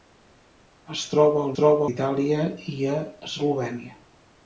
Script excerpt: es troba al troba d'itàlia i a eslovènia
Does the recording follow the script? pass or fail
pass